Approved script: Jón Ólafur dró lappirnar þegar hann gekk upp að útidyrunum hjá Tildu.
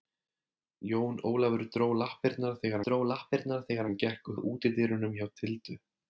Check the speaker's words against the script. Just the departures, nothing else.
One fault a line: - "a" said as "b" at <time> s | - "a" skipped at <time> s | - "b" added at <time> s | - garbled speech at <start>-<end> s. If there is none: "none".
- "dró lappirnar þegar" added at 2.9 s
- "upp" skipped at 4.3 s